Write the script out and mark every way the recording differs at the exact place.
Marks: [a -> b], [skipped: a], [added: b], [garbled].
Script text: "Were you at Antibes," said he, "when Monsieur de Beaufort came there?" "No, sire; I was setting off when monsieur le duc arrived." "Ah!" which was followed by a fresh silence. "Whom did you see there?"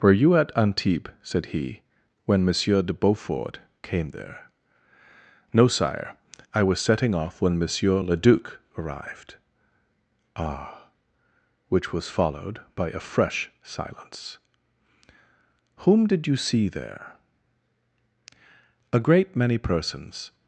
"Were you at Antibes," said he, "when Monsieur de Beaufort came there?" "No, sire; I was setting off when monsieur le duc arrived." "Ah!" which was followed by a fresh silence. "Whom did you see there?" [added: A great many persons]